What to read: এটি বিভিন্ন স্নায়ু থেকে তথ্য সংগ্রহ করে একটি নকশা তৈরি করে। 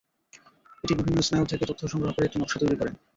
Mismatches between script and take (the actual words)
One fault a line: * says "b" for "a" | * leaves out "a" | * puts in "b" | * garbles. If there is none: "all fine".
all fine